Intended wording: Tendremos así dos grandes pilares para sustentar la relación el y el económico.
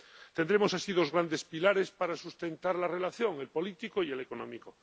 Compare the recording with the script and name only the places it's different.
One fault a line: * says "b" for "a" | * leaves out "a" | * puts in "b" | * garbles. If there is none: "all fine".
* puts in "político"